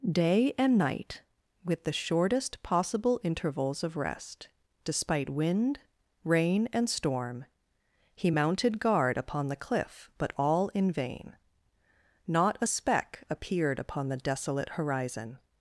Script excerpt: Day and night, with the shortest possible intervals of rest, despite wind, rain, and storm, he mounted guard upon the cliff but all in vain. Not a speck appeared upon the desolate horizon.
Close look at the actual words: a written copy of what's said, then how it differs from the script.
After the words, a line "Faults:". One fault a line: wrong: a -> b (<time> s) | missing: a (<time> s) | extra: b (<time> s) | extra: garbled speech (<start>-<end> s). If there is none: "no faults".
Day and night, with the shortest possible intervals of rest, despite wind, rain, and storm, he mounted guard upon the cliff but all in vain. Not a speck appeared upon the desolate horizon.
Faults:
no faults